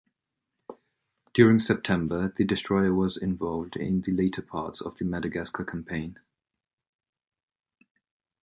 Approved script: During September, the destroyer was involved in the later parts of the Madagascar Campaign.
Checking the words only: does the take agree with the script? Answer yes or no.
yes